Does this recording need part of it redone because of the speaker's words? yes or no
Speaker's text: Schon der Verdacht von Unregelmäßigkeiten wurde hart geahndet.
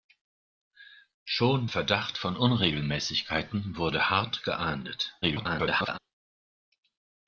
yes